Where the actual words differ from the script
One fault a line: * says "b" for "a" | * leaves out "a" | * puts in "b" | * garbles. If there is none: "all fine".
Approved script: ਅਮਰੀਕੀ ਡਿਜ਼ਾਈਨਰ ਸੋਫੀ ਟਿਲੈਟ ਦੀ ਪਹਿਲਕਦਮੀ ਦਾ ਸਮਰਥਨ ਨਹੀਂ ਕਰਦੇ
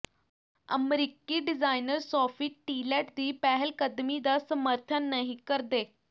all fine